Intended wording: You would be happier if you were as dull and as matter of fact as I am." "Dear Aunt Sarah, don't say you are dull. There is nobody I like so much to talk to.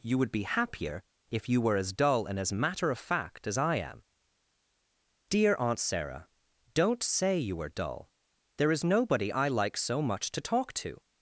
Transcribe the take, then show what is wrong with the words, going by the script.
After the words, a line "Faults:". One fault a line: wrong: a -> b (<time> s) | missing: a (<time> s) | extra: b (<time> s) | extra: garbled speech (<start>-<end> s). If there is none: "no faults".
You would be happier if you were as dull and as matter of fact as I am." "Dear Aunt Sarah, don't say you are dull. There is nobody I like so much to talk to.
Faults:
no faults